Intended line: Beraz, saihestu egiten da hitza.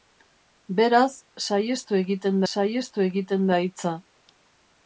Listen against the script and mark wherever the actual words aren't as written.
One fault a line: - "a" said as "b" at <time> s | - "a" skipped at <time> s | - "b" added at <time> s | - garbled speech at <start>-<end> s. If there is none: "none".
- "saihestu egiten" added at 2.5 s